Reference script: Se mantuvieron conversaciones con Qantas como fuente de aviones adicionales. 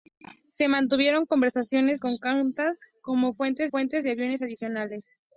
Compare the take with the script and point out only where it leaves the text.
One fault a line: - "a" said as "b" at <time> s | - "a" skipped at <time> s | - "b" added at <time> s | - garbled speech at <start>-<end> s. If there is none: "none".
- "fuente" added at 3.7 s